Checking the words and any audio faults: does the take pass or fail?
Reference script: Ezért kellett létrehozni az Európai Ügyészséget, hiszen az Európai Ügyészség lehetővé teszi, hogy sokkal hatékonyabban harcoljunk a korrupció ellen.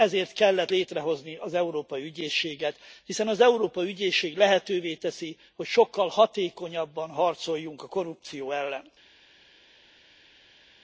pass